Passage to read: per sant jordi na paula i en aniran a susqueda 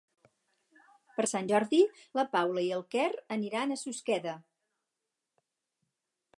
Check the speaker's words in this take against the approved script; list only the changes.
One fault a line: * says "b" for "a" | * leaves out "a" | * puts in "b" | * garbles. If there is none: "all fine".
* puts in "quer"